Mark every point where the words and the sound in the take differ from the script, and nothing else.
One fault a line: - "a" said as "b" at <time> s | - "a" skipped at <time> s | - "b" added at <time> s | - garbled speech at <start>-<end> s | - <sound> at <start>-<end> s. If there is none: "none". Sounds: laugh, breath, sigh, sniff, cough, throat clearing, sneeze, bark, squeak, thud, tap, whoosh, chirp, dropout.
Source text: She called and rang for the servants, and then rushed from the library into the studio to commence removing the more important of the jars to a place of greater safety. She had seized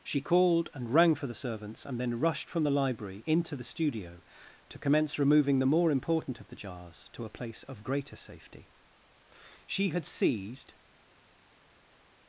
none